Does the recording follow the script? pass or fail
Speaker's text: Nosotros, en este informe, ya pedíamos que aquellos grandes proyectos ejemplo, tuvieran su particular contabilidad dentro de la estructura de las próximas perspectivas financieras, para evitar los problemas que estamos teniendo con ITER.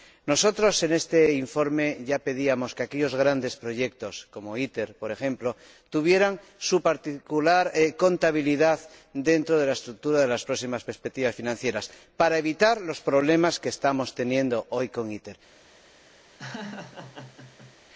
fail